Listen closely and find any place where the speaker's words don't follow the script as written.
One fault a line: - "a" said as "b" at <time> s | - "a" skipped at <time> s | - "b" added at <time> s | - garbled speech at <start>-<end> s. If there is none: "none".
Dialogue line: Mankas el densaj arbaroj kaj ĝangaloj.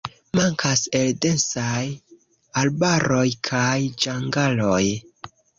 none